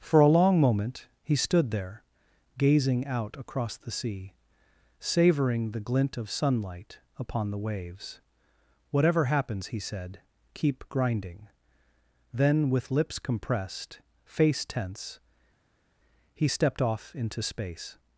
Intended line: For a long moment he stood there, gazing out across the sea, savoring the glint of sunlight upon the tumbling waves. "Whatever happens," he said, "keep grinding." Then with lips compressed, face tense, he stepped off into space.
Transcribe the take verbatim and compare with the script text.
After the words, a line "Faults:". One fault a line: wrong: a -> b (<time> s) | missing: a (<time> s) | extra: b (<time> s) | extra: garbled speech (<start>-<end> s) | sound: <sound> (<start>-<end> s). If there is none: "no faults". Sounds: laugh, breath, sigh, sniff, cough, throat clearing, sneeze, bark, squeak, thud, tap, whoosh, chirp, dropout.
For a long moment he stood there, gazing out across the sea, savoring the glint of sunlight upon the waves. "Whatever happens," he said, "keep grinding." Then with lips compressed, face tense, he stepped off into space.
Faults:
missing: tumbling (7.6 s)